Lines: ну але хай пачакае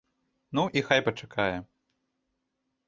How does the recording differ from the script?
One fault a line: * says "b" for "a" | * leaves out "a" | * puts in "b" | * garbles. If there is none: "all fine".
* says "і" for "але"